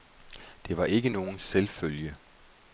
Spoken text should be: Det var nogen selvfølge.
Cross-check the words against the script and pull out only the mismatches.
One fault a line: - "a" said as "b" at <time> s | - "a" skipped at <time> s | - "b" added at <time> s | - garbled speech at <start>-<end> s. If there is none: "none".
- "ikke" added at 0.8 s